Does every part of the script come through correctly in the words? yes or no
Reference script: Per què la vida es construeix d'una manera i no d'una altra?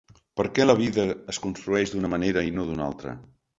yes